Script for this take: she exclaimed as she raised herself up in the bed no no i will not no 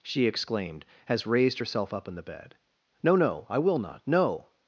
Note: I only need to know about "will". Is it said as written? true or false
true